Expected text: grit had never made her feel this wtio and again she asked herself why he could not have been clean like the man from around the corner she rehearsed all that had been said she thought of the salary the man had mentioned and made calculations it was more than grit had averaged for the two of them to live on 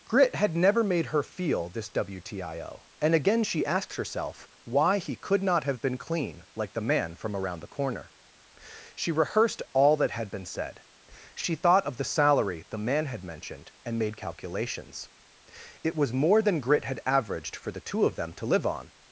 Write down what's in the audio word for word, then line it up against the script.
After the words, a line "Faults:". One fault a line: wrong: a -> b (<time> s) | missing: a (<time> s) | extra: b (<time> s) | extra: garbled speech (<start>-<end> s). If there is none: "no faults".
grit had never made her feel this wtio and again she asked herself why he could not have been clean like the man from around the corner she rehearsed all that had been said she thought of the salary the man had mentioned and made calculations it was more than grit had averaged for the two of them to live on
Faults:
no faults